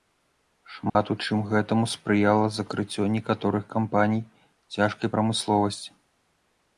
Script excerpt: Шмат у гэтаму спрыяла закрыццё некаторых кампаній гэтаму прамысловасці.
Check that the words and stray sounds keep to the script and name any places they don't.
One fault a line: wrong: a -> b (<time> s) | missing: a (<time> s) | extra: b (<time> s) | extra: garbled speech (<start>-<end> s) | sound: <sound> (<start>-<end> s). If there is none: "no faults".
sound: dropout (0.9-1.0 s)
extra: чым (1.2 s)
wrong: гэтаму -> цяжкай (4.8 s)